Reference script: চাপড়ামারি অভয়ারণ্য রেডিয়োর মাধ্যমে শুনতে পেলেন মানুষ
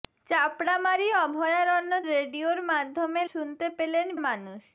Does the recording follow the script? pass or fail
pass